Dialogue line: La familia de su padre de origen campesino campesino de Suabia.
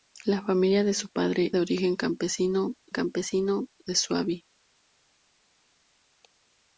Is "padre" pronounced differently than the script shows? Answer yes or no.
no